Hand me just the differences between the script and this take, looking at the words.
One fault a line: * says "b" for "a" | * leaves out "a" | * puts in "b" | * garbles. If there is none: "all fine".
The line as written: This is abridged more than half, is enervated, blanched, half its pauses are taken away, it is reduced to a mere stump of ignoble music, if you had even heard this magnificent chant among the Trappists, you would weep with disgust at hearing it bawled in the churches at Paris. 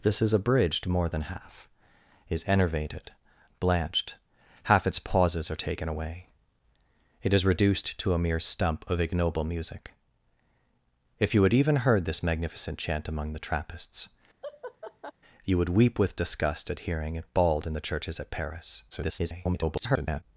* garbles